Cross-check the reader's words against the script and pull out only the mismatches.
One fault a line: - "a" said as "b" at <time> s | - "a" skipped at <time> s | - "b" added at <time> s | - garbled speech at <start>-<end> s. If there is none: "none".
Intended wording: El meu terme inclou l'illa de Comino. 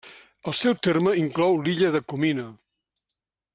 - "meu" said as "seu" at 0.6 s